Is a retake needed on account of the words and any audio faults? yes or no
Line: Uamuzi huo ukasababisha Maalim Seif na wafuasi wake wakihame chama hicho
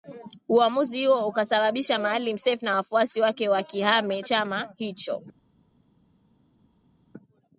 no